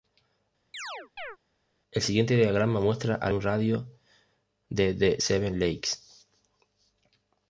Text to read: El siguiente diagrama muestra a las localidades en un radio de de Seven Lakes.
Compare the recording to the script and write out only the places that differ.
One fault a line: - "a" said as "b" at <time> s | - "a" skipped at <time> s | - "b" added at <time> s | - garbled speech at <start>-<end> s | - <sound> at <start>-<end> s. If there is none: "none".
- chirp at 0.7-1.4 s
- "las localidades en" skipped at 3.3 s